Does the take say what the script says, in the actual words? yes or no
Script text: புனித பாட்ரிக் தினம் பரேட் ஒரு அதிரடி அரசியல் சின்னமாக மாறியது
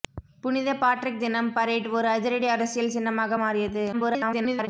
no